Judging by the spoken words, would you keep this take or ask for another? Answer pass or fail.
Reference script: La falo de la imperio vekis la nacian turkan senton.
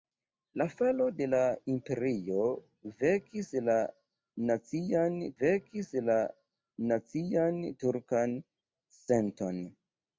fail